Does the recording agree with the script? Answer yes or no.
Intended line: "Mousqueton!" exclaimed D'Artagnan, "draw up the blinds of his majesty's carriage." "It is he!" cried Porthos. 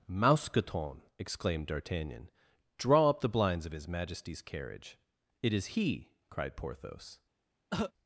yes